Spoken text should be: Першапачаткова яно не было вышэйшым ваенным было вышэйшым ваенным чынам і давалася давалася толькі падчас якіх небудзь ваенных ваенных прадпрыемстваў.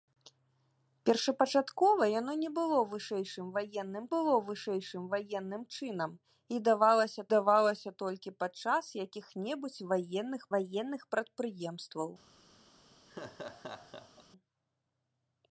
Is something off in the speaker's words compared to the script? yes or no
no